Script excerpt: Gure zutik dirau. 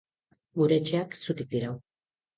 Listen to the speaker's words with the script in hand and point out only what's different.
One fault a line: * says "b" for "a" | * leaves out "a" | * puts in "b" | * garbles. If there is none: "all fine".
* puts in "etxeak"